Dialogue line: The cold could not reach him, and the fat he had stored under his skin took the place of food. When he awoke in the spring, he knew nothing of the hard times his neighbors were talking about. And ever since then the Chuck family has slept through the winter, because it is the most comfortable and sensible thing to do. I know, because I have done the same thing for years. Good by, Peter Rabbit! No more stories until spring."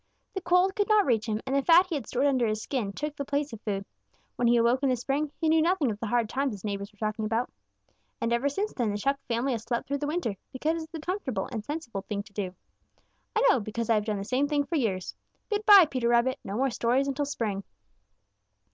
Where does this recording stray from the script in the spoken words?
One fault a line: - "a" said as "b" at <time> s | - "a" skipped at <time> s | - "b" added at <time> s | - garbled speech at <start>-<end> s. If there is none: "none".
- "is the most" skipped at 11.0 s